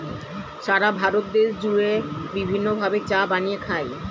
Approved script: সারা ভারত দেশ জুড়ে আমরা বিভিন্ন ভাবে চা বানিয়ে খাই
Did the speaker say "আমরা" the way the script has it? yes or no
no